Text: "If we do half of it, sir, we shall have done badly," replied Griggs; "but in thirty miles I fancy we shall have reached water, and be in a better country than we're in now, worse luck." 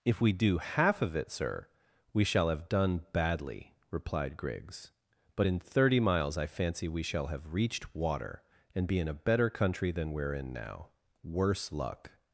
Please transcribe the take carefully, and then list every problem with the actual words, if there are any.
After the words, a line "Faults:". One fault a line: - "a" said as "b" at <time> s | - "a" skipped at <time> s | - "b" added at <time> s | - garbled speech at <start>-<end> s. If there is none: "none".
"If we do half of it, sir, we shall have done badly," replied Griggs; "but in thirty miles I fancy we shall have reached water, and be in a better country than we're in now, worse luck."
Faults:
none